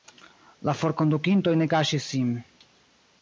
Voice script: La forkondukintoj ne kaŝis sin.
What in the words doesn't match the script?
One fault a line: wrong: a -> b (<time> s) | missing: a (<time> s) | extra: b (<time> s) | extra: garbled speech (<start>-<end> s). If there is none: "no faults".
no faults